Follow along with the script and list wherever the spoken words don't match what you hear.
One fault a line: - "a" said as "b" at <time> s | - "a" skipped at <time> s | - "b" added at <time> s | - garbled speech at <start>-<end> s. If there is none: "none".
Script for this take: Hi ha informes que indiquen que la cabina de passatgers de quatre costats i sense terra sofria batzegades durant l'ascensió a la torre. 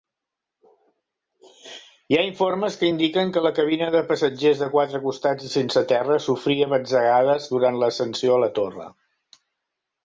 none